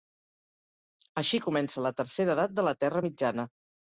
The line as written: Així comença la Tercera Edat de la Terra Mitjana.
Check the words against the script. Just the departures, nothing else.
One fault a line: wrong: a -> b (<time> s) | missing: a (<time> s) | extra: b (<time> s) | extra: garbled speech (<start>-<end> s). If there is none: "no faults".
no faults